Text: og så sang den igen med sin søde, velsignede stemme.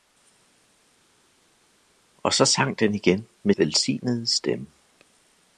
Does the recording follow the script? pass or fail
fail